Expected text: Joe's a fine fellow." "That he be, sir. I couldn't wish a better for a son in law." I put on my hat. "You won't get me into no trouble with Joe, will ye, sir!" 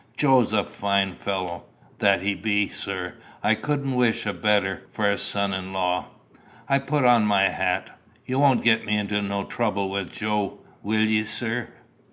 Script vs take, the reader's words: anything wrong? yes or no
no